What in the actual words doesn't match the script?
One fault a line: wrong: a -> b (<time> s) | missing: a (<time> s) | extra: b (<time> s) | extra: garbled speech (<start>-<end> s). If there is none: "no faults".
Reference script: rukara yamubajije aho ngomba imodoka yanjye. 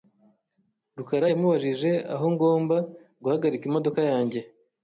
extra: guhagarika (3.2 s)